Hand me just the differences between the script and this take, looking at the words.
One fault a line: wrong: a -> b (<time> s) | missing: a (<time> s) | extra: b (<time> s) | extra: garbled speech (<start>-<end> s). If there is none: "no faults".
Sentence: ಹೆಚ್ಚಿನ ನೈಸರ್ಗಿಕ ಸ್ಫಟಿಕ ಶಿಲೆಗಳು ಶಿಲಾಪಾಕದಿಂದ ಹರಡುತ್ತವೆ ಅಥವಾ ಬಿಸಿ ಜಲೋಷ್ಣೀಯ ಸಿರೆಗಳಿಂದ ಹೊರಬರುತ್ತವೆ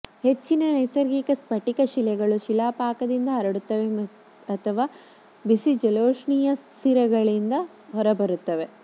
no faults